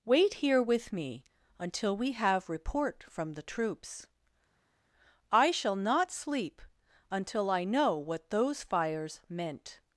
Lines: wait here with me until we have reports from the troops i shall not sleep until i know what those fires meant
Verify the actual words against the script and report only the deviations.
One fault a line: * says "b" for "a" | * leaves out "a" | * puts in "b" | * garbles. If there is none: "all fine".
* says "report" for "reports"